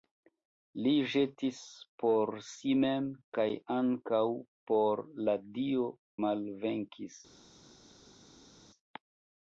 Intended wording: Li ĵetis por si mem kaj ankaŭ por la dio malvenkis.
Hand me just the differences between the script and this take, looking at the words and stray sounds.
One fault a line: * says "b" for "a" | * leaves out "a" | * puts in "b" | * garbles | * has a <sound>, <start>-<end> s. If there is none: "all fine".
all fine